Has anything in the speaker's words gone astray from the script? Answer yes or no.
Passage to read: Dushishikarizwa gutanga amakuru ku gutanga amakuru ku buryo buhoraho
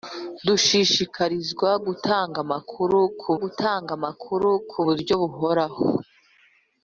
no